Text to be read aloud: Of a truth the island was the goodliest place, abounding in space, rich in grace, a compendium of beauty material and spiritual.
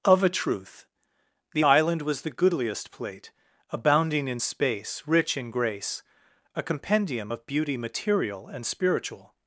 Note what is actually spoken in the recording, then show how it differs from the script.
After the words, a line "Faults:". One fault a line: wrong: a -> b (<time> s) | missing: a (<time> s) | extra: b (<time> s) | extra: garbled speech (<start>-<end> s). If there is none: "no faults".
Of a truth the island was the goodliest plate, abounding in space, rich in grace, a compendium of beauty material and spiritual.
Faults:
wrong: place -> plate (2.9 s)